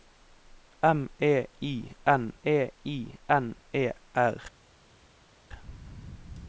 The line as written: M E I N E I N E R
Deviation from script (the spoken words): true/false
false